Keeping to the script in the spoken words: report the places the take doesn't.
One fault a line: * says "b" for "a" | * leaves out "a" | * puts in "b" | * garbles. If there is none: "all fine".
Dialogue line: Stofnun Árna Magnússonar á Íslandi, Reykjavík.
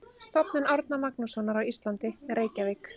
all fine